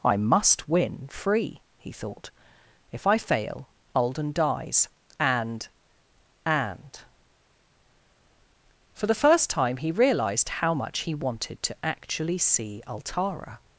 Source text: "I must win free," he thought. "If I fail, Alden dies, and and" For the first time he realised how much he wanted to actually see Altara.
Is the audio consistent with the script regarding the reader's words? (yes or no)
yes